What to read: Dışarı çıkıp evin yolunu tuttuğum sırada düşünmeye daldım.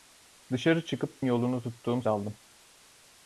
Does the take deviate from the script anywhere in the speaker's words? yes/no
yes